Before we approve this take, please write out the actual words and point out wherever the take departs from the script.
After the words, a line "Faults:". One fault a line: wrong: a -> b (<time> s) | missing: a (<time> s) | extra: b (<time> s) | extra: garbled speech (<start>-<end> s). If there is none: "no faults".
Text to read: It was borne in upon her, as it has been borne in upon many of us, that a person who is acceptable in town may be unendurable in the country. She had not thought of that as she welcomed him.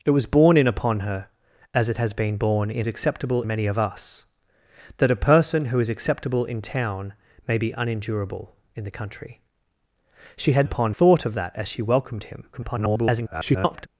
It was borne in upon her, as it has been borne in acceptable many of us, that a person who is acceptable in town may be unendurable in the country. She had upon thought of that as she welcomed him. [garbled]
Faults:
wrong: upon -> acceptable (2.9 s)
wrong: not -> upon (10.6 s)
extra: garbled speech (12.5-13.9 s)